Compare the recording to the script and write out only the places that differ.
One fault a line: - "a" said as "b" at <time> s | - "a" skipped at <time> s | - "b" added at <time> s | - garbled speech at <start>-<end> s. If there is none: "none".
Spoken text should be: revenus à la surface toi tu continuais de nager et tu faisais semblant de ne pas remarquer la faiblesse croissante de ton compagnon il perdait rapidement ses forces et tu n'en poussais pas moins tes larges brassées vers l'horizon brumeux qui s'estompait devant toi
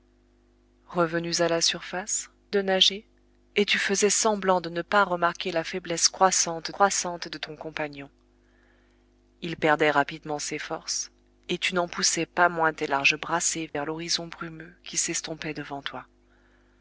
- "toi tu continuais" skipped at 2.3 s
- "croissante" added at 6.7 s